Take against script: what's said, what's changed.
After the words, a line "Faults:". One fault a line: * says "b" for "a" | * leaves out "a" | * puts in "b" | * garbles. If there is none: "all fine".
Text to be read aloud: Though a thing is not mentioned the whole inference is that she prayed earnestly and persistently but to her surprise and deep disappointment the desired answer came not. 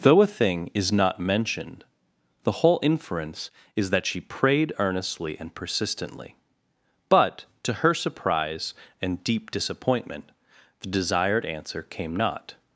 Though a thing is not mentioned the whole inference is that she prayed earnestly and persistently but to her surprise and deep disappointment the desired answer came not.
Faults:
all fine